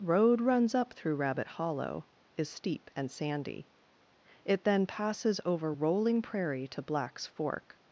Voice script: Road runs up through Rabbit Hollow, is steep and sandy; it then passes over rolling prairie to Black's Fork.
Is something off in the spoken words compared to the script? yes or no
no